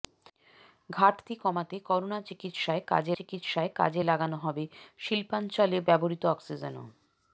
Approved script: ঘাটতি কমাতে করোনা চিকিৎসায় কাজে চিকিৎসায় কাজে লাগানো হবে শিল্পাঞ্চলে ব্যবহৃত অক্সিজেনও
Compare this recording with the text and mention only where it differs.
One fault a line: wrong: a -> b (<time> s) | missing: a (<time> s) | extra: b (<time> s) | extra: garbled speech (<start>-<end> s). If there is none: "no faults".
no faults